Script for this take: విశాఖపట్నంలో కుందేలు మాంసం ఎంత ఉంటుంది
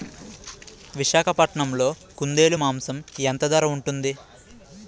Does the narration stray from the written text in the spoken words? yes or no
yes